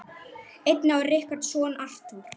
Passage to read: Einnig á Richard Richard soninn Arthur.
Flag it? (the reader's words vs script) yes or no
yes